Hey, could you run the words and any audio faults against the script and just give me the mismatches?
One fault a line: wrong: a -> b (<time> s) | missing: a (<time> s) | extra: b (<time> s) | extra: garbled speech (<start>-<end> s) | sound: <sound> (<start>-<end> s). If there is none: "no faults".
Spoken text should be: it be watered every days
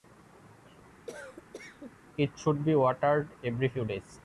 sound: cough (1.1-1.9 s)
extra: should (2.4 s)
extra: few (3.6 s)